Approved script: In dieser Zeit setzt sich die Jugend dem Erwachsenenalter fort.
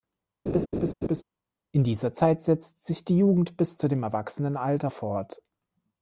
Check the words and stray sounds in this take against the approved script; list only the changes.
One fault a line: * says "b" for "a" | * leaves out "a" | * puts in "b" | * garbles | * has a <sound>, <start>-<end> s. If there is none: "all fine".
* has a laugh, 0.5-1.2 s
* puts in "bis zu"